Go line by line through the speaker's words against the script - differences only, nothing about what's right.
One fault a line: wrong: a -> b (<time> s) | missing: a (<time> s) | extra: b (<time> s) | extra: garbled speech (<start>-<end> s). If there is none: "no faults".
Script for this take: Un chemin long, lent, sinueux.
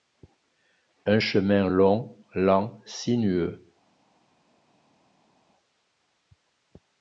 no faults